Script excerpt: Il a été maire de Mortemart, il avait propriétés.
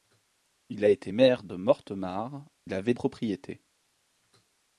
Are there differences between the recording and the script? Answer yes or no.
no